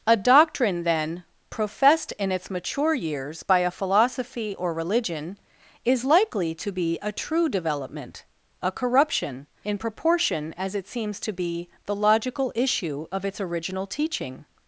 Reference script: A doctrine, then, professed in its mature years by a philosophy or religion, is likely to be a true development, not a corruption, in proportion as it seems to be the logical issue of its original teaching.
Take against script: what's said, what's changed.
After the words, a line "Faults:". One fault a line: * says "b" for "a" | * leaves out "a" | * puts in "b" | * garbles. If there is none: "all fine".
A doctrine, then, professed in its mature years by a philosophy or religion, is likely to be a true development, a corruption, in proportion as it seems to be the logical issue of its original teaching.
Faults:
* leaves out "not"